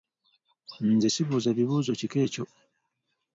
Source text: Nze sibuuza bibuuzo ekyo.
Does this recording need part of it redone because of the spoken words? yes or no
yes